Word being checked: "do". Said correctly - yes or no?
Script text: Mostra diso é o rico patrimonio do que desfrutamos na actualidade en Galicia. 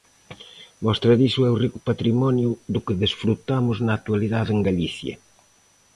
yes